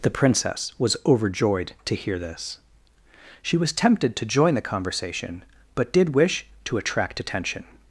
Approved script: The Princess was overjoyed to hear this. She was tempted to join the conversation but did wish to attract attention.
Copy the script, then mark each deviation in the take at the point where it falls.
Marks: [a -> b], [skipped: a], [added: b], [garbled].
The Princess was overjoyed to hear this. She was tempted to join the conversation but did wish to attract attention.